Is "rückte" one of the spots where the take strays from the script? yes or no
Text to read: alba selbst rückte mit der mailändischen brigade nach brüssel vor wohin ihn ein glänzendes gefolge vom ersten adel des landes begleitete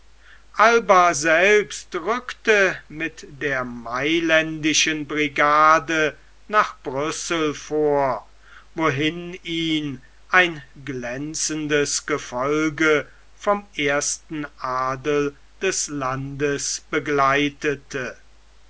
no